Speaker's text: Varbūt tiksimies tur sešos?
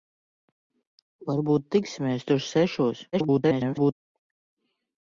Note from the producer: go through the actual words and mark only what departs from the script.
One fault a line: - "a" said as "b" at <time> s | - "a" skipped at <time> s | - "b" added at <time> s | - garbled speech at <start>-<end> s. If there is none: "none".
- garbled speech at 3.1-3.9 s